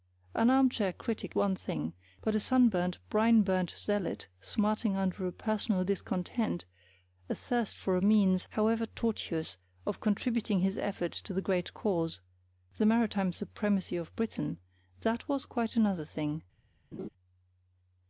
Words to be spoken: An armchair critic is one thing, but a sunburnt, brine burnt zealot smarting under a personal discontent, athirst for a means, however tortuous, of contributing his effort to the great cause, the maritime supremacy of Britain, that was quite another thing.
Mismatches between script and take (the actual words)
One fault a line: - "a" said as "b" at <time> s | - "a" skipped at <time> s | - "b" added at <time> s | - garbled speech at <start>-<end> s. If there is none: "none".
- "is" skipped at 1.4 s